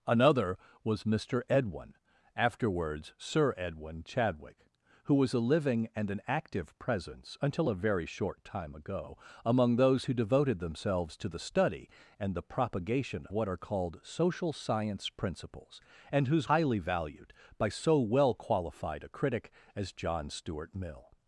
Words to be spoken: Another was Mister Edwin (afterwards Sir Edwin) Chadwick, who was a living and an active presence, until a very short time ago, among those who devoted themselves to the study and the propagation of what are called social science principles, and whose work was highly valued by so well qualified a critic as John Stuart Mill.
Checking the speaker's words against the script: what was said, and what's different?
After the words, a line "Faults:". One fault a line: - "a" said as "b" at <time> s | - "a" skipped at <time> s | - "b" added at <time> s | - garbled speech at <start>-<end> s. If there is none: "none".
Another was Mister Edwin (afterwards Sir Edwin) Chadwick, who was a living and an active presence, until a very short time ago, among those who devoted themselves to the study and the propagation what are called social science principles, and whose highly valued by so well qualified a critic as John Stuart Mill.
Faults:
- "of" skipped at 13.3 s
- "work was" skipped at 16.5 s